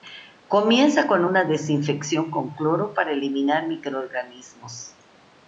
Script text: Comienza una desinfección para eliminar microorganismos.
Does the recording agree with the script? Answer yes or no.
no